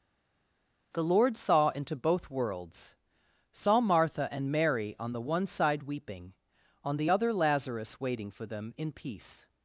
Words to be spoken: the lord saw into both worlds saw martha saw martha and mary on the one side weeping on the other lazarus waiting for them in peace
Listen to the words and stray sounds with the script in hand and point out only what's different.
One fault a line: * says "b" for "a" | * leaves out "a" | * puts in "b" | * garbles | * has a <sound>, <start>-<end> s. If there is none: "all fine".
* leaves out "saw martha"